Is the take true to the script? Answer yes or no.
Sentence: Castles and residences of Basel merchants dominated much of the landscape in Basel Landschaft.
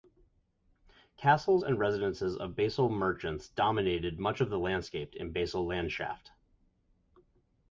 yes